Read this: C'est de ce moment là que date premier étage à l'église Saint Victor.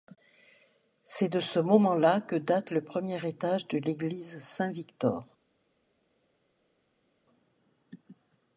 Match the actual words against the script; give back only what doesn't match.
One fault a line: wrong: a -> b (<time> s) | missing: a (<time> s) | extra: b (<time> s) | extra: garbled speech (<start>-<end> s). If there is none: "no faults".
extra: le (2.7 s)
wrong: à -> de (3.7 s)